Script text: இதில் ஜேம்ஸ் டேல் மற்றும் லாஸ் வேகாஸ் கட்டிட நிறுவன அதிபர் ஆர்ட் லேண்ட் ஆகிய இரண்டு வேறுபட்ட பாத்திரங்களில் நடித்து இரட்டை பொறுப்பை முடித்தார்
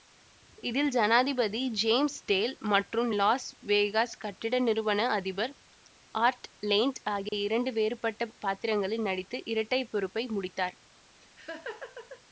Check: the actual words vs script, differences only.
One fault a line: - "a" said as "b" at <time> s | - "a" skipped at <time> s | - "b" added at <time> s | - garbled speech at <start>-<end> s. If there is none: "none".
- "ஜனாதிபதி" added at 0.9 s